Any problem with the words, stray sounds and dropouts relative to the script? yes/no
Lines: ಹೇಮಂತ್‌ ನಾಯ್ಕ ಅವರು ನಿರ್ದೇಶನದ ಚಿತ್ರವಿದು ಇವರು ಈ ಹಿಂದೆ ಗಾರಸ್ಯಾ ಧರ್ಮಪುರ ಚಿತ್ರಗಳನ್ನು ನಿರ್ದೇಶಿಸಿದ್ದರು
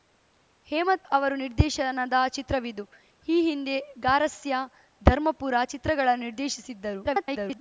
yes